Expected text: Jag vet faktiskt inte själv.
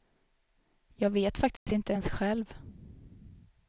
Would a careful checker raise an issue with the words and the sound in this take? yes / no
yes